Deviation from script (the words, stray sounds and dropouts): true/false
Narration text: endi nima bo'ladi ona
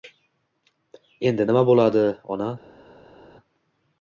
false